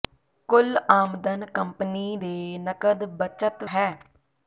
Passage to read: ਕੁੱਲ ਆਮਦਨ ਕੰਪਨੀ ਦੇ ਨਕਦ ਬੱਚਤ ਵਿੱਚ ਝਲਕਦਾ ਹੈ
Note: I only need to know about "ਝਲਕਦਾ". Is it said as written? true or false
false